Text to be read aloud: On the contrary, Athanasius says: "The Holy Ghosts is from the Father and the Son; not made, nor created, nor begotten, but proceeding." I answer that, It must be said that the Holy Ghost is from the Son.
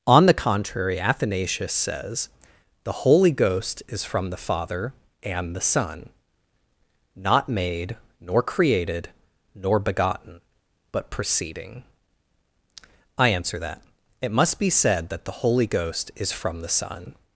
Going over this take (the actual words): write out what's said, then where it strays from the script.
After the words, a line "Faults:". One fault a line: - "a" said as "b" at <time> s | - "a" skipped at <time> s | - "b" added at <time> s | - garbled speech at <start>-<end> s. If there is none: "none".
On the contrary, Athanasius says: "The Holy Ghost is from the Father and the Son; not made, nor created, nor begotten, but proceeding." I answer that, It must be said that the Holy Ghost is from the Son.
Faults:
- "Ghosts" said as "Ghost" at 3.3 s